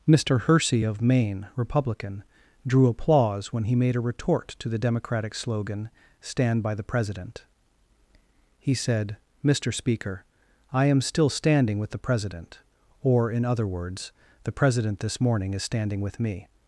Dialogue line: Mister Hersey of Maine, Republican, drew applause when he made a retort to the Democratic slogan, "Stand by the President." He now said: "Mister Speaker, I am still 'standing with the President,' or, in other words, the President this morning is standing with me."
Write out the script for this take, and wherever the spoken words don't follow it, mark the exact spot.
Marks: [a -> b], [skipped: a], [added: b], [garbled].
Mister Hersey of Maine, Republican, drew applause when he made a retort to the Democratic slogan, "Stand by the President." He [skipped: now] said: "Mister Speaker, I am still 'standing with the President,' or, in other words, the President this morning is standing with me."